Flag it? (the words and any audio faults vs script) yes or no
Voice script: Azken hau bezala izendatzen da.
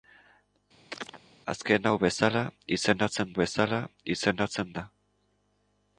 yes